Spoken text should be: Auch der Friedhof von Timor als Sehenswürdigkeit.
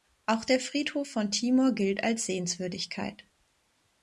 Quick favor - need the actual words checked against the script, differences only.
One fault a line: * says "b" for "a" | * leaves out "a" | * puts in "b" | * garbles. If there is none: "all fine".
* puts in "gilt"